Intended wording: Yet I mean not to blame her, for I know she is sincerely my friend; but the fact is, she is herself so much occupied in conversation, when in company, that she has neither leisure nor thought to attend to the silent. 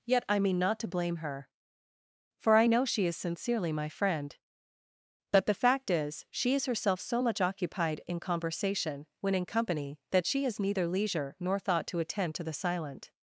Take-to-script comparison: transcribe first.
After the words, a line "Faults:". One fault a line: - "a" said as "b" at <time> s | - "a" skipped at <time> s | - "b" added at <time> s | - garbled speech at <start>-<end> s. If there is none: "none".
Yet I mean not to blame her, for I know she is sincerely my friend; but the fact is, she is herself so much occupied in conversation, when in company, that she has neither leisure nor thought to attend to the silent.
Faults:
none